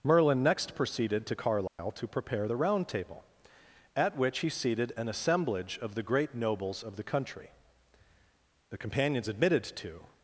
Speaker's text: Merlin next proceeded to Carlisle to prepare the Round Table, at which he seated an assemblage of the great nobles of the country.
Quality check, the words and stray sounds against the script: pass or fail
fail